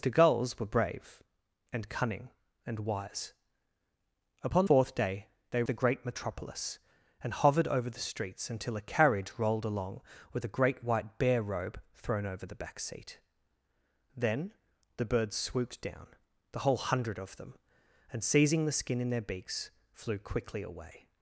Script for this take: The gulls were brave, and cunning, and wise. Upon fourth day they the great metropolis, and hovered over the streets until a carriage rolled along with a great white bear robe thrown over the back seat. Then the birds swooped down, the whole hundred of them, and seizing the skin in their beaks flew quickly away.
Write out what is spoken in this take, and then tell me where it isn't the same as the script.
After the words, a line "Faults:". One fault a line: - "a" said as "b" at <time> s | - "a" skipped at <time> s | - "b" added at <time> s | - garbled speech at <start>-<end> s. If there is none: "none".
The gulls were brave, and cunning, and wise. Upon fourth day they the great metropolis, and hovered over the streets until a carriage rolled along with a great white bear robe thrown over the back seat. Then the birds swooped down, the whole hundred of them, and seizing the skin in their beaks flew quickly away.
Faults:
none